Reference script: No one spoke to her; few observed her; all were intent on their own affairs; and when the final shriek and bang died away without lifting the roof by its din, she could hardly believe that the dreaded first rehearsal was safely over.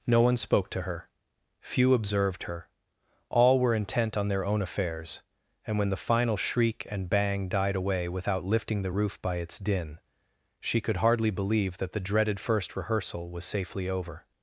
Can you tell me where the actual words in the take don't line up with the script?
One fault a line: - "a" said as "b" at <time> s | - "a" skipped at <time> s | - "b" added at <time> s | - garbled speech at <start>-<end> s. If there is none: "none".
none